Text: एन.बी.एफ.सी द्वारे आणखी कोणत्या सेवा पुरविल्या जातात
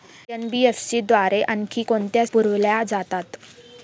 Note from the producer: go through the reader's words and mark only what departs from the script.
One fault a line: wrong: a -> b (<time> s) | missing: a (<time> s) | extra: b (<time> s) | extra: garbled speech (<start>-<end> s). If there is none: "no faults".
missing: सेवा (2.2 s)